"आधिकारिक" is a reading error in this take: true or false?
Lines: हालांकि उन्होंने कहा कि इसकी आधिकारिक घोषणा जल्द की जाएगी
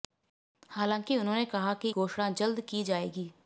true